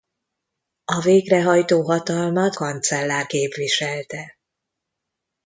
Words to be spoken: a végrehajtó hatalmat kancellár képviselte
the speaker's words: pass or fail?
pass